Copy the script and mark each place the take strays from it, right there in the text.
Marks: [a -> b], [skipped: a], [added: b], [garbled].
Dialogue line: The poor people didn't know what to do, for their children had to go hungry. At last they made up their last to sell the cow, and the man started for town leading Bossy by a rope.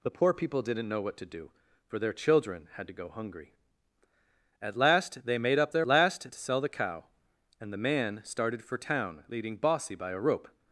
The poor people didn't know what to do, for their children had to go hungry. At last they made up their last to sell the cow, and the man started for town leading Bossy by a rope.